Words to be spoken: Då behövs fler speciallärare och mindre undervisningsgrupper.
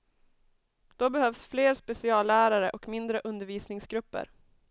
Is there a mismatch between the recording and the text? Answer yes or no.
no